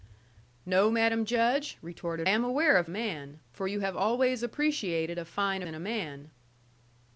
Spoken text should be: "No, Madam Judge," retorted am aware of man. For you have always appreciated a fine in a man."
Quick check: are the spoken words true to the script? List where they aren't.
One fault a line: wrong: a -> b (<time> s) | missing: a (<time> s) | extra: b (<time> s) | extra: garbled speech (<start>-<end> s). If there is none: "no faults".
no faults